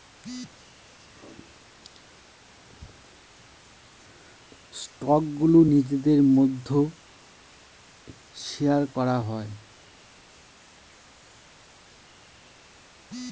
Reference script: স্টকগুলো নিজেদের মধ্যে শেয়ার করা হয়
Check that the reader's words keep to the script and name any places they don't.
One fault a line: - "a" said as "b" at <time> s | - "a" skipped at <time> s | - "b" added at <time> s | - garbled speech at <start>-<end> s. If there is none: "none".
none